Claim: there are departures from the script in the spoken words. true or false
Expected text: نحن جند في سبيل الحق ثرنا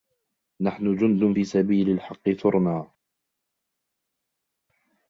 false